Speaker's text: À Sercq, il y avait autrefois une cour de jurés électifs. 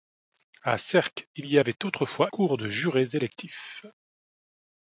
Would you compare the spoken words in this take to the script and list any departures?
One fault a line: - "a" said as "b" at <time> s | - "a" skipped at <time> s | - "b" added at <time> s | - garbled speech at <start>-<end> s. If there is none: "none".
- "une" skipped at 2.3 s